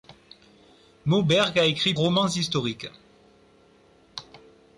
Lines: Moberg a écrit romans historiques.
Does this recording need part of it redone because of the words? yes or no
no